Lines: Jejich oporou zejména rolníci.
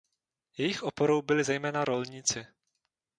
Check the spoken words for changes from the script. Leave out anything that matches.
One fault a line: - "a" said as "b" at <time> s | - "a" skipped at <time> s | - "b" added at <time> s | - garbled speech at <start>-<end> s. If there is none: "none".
- "byli" added at 1.2 s